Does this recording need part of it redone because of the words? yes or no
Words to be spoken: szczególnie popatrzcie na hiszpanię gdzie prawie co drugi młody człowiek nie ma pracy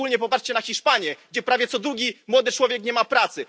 no